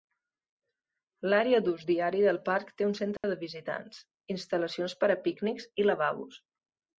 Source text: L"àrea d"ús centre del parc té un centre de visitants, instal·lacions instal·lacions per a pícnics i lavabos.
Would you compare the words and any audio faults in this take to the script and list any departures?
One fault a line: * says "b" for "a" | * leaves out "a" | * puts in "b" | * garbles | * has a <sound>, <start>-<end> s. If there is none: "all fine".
* says "diari" for "centre"
* has a dropout, 3.2-3.2 s
* leaves out "instal·lacions"